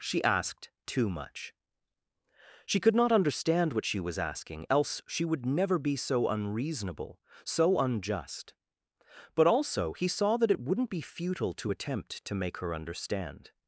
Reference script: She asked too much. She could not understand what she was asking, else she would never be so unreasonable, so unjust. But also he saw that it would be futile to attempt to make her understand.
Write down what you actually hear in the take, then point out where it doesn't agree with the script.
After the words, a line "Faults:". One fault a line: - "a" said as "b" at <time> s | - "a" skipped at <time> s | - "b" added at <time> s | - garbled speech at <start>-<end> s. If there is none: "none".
She asked too much. She could not understand what she was asking, else she would never be so unreasonable, so unjust. But also he saw that it wouldn't be futile to attempt to make her understand.
Faults:
- "would" said as "wouldn't" at 10.6 s